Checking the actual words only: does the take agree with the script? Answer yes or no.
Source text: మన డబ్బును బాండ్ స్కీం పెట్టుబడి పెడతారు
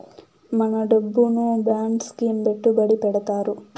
yes